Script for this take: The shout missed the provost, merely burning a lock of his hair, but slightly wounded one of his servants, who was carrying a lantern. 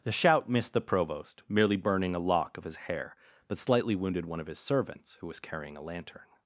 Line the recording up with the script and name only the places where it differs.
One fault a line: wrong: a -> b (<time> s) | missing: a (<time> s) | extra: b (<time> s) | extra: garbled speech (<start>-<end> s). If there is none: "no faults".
no faults